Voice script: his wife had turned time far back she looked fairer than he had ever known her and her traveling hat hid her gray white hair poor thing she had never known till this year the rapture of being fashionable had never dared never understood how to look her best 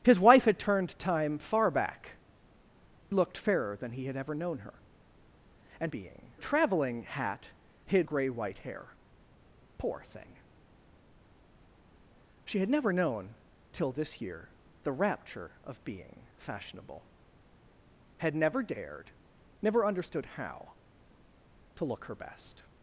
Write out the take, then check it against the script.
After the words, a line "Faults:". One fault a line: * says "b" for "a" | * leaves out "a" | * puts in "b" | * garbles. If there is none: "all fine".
his wife had turned time far back looked fairer than he had ever known her and being traveling hat hid gray white hair poor thing she had never known till this year the rapture of being fashionable had never dared never understood how to look her best
Faults:
* leaves out "she"
* says "being" for "her"
* leaves out "her"